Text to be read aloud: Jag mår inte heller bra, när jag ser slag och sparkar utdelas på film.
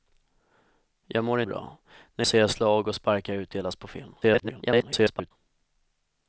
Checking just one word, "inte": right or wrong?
wrong